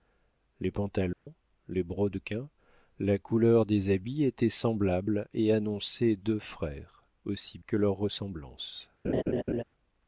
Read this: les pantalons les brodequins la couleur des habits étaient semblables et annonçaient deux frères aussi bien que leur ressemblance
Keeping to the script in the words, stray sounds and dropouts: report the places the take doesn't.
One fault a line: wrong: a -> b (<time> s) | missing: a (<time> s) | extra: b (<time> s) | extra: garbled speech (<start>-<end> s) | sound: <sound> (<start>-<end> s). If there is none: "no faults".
sound: dropout (1.1-1.3 s)
missing: bien (7.6 s)
sound: laugh (9.0-9.6 s)